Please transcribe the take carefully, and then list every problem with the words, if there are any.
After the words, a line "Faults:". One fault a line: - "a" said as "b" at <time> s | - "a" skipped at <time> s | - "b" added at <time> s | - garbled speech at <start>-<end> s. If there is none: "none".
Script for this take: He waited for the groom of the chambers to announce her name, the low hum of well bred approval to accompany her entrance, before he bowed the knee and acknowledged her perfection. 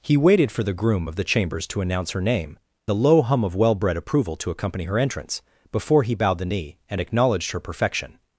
He waited for the groom of the chambers to announce her name, the low hum of well bred approval to accompany her entrance, before he bowed the knee and acknowledged her perfection.
Faults:
none